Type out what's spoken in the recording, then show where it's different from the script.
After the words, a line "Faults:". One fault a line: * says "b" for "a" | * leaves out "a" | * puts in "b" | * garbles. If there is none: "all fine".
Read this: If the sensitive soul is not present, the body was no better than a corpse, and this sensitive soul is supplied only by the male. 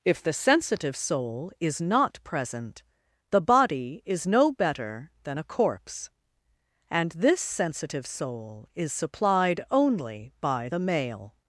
If the sensitive soul is not present, the body is no better than a corpse, and this sensitive soul is supplied only by the male.
Faults:
* says "is" for "was"